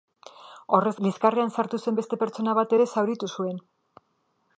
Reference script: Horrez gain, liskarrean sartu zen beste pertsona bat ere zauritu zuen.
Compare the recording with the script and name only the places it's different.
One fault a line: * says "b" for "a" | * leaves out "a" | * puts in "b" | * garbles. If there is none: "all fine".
* leaves out "gain"